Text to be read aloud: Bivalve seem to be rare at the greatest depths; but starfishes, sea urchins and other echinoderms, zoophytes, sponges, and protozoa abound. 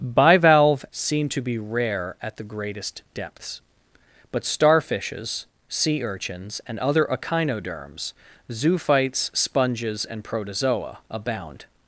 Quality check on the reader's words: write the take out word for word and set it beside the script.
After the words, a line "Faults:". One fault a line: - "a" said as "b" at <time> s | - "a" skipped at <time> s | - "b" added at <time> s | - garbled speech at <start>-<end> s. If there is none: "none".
Bivalve seem to be rare at the greatest depths; but starfishes, sea urchins and other echinoderms, zoophytes, sponges, and protozoa abound.
Faults:
none